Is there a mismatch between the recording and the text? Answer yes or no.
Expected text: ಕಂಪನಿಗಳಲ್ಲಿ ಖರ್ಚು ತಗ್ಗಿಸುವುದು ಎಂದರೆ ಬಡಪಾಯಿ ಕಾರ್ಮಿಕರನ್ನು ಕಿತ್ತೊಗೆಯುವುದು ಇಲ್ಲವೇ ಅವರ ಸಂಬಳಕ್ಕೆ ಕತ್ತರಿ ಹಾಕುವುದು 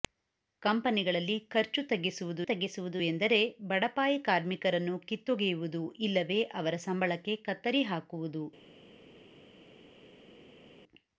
yes